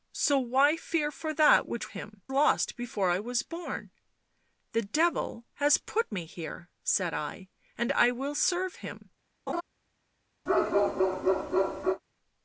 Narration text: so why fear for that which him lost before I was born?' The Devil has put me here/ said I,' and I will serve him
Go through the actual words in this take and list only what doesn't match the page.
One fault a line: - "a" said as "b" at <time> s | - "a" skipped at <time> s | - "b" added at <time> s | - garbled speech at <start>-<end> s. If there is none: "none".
none